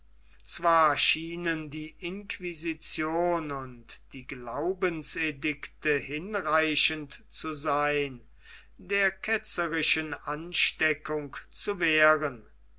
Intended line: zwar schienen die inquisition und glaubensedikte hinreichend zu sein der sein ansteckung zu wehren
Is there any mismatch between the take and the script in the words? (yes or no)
yes